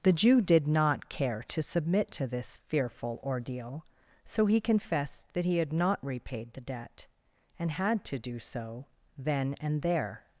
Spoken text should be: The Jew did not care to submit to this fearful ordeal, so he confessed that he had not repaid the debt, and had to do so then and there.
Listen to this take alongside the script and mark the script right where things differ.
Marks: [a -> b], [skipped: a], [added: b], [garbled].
The Jew did not care to submit to this fearful ordeal, so he confessed that he had not repaid the debt, and had to do so then and there.